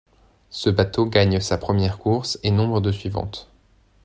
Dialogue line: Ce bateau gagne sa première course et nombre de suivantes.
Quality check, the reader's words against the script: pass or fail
pass